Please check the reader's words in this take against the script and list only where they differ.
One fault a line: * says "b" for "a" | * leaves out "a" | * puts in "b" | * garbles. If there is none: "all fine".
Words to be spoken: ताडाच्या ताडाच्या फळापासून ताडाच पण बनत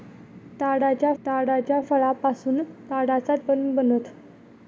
all fine